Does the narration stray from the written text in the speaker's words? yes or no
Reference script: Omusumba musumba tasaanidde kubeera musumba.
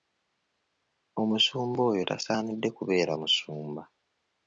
yes